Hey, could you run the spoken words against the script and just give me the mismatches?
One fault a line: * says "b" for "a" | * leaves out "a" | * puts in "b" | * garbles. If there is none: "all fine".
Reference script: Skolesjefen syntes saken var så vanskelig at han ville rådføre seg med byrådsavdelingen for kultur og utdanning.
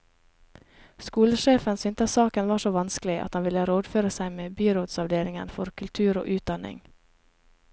all fine